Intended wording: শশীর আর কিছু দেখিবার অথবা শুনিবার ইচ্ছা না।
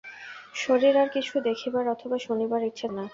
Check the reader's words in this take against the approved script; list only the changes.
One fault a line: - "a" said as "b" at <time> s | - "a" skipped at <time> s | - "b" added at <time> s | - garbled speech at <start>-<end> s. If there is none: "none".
none